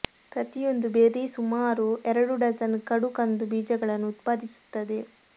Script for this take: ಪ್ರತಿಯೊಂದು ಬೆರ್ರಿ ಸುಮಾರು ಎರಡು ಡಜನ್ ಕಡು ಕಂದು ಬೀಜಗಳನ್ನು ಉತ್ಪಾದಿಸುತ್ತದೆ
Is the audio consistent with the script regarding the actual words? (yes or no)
yes